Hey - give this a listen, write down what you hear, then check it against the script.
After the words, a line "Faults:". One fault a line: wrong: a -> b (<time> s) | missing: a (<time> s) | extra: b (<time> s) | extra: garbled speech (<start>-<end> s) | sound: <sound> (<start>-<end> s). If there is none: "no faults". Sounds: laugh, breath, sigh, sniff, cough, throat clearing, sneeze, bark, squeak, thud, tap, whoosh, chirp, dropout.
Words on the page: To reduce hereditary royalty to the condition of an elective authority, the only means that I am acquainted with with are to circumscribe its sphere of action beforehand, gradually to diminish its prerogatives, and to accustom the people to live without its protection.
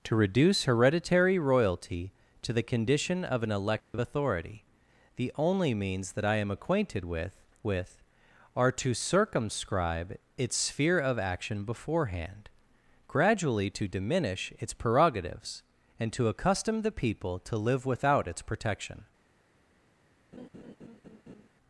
To reduce hereditary royalty to the condition of an elective authority, the only means that I am acquainted with with are to circumscribe its sphere of action beforehand, gradually to diminish its prerogatives, and to accustom the people to live without its protection.
Faults:
sound: dropout (3.8-3.9 s)
sound: laugh (20.3-21.5 s)